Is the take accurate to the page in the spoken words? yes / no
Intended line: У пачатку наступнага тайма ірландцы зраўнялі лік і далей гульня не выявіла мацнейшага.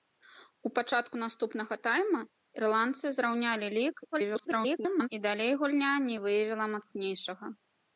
no